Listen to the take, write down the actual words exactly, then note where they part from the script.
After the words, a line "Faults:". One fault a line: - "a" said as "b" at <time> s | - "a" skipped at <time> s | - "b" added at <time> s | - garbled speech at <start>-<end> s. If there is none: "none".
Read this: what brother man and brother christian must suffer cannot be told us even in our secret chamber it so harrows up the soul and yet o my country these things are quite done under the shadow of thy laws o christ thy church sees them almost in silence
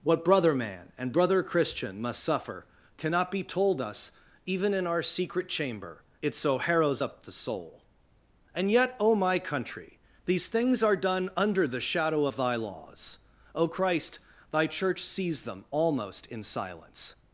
what brother man and brother christian must suffer cannot be told us even in our secret chamber it so harrows up the soul and yet o my country these things are done under the shadow of thy laws o christ thy church sees them almost in silence
Faults:
- "quite" skipped at 10.9 s